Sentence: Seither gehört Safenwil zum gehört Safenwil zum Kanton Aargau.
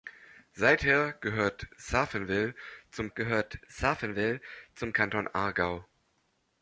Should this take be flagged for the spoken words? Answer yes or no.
no